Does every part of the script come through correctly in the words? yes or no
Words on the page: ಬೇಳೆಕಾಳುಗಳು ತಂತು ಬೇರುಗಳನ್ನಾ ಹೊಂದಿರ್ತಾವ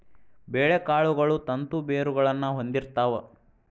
yes